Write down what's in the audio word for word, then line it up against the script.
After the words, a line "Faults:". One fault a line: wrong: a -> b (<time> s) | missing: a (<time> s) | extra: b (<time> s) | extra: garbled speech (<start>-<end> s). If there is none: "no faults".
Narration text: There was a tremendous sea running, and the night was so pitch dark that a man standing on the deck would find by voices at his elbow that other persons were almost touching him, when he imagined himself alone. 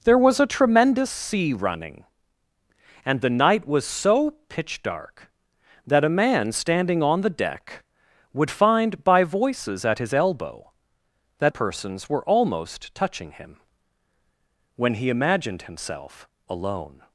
There was a tremendous sea running, and the night was so pitch dark that a man standing on the deck would find by voices at his elbow that persons were almost touching him, when he imagined himself alone.
Faults:
missing: other (11.5 s)